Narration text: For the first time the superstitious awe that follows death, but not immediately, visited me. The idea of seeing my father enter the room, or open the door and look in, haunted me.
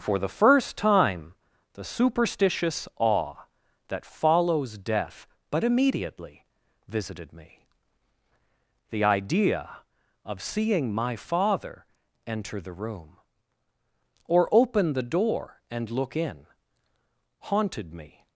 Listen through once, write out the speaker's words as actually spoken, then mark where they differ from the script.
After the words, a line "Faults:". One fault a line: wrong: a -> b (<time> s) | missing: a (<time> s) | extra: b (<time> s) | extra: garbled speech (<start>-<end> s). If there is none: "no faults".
For the first time the superstitious awe that follows death, but immediately, visited me. The idea of seeing my father enter the room, or open the door and look in, haunted me.
Faults:
missing: not (5.6 s)